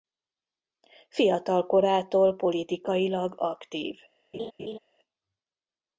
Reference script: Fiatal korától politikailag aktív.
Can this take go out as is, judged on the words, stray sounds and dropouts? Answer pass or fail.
fail